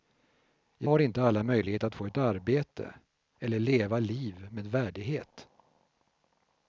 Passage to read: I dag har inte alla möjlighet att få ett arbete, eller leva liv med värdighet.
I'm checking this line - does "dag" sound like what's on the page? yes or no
no